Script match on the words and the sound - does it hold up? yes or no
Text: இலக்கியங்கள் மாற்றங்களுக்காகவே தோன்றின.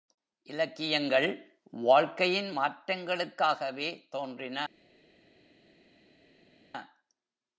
no